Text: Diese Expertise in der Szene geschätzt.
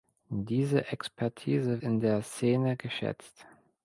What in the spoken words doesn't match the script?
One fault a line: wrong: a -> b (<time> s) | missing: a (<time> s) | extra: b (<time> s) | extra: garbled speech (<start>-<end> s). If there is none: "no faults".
no faults